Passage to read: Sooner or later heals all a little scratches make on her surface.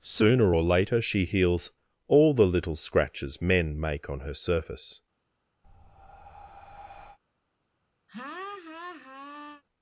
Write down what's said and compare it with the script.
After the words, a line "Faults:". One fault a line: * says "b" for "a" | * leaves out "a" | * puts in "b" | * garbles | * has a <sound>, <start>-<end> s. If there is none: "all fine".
Sooner or later she heals all the little scratches men make on her surface.
Faults:
* puts in "she"
* says "the" for "a"
* puts in "men"
* has a breath, 5.6-7.2 s
* has a laugh, 8.1-9.6 s